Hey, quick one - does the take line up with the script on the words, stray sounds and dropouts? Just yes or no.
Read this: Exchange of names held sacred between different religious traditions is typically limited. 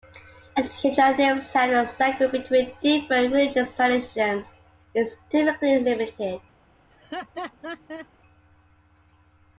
no